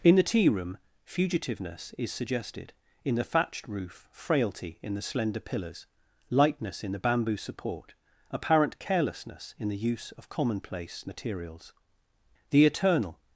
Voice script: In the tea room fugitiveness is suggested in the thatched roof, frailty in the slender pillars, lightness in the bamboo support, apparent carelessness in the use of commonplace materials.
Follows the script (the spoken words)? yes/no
no